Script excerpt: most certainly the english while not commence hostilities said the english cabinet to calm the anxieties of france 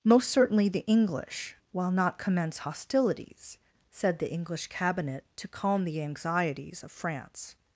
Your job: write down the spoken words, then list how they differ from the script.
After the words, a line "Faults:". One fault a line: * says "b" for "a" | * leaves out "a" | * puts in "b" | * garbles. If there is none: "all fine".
most certainly the english while not commence hostilities said the english cabinet to calm the anxieties of france
Faults:
all fine